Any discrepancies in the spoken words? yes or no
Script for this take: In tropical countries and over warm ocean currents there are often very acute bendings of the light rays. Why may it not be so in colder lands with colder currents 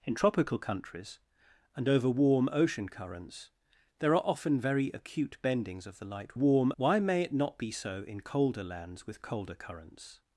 yes